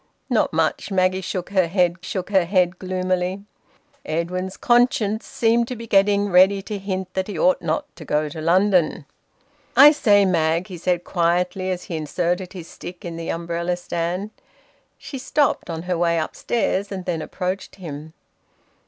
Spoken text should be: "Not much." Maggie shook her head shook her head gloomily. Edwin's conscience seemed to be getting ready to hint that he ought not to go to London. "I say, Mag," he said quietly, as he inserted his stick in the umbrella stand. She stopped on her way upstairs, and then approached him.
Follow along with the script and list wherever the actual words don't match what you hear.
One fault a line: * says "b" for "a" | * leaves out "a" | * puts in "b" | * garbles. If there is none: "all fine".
all fine